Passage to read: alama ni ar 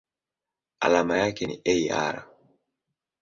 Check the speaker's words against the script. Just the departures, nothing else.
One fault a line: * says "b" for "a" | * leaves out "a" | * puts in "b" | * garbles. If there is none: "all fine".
* puts in "yake"